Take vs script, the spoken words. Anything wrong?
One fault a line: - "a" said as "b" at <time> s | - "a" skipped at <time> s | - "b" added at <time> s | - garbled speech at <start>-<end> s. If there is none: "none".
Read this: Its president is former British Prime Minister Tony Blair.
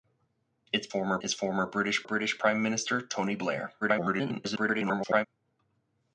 - "president" said as "former" at 0.9 s
- "British" added at 2.0 s
- garbled speech at 3.8-5.3 s